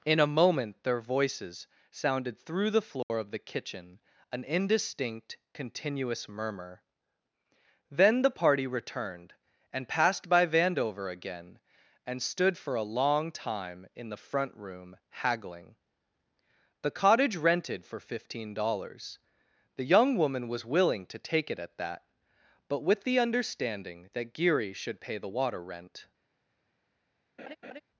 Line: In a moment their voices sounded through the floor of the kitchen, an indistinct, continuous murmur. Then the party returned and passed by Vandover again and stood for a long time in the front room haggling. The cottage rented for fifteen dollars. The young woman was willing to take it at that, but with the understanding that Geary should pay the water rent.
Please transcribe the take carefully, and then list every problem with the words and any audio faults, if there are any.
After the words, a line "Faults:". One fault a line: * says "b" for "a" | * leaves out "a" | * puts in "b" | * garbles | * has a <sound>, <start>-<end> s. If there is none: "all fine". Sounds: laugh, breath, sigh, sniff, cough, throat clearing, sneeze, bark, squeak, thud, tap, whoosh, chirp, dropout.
In a moment their voices sounded through the floor of the kitchen, an indistinct, continuous murmur. Then the party returned and passed by Vandover again and stood for a long time in the front room haggling. The cottage rented for fifteen dollars. The young woman was willing to take it at that, but with the understanding that Geary should pay the water rent.
Faults:
* has a dropout, 3.0-3.1 s
* has a laugh, 27.4-27.8 s